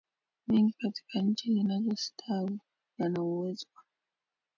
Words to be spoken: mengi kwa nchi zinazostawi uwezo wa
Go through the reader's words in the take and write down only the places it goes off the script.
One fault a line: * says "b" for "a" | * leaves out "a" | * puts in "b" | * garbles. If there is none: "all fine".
* says "katika" for "kwa"
* puts in "yana"